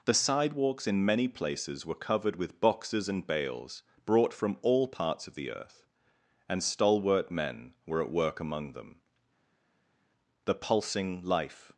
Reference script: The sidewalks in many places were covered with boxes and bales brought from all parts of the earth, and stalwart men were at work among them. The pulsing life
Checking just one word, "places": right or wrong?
right